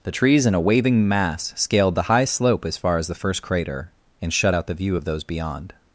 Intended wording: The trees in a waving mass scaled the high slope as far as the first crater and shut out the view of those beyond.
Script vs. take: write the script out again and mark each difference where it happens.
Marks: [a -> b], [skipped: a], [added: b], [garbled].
The trees in a waving mass scaled the high slope as far as the first crater and shut out the view of those beyond.